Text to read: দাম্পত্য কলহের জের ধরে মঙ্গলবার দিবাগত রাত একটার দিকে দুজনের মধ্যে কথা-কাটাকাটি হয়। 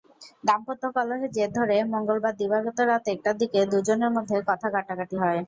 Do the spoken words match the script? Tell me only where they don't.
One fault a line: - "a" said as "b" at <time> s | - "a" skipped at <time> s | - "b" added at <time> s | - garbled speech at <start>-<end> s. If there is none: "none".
none